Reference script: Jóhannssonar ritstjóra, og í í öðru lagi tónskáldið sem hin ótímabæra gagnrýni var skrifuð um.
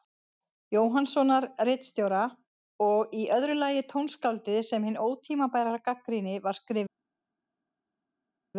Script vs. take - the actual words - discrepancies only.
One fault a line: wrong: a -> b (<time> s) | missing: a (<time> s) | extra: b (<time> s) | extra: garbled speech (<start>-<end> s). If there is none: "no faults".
missing: í (3.3 s)